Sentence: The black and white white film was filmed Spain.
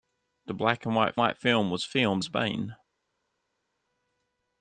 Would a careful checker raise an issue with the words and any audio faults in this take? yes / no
no